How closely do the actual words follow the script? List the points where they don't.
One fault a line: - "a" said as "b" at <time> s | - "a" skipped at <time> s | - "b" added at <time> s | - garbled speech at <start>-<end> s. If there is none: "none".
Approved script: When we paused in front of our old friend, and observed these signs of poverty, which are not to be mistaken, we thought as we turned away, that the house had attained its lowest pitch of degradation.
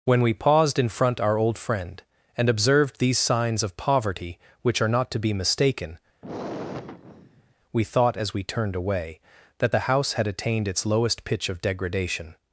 - "of" skipped at 1.2 s